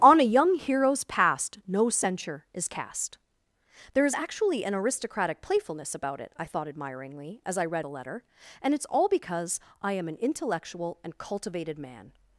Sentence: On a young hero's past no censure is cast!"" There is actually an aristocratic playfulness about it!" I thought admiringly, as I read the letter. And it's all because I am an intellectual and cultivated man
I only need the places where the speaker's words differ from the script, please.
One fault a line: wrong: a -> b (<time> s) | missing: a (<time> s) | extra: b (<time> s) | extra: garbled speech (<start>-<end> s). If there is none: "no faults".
no faults